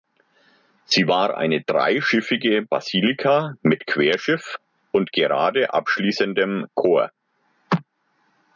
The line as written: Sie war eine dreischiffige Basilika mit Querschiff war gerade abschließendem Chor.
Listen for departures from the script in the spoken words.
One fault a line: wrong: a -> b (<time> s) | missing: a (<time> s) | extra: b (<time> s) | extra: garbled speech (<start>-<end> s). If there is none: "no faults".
wrong: war -> und (4.9 s)